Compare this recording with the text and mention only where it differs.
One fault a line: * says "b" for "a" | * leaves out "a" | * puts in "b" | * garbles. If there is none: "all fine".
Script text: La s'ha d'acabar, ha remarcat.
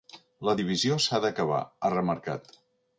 * puts in "divisió"